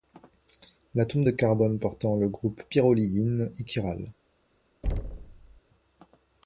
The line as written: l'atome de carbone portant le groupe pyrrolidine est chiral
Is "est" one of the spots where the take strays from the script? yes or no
no